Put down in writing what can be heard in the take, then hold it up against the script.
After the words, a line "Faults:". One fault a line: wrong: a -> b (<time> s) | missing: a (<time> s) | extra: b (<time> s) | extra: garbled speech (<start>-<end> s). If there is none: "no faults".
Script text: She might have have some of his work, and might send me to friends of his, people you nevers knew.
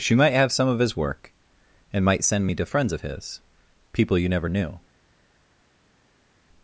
She might have some of his work, and might send me to friends of his, people you never knew.
Faults:
missing: have (0.5 s)
wrong: nevers -> never (4.3 s)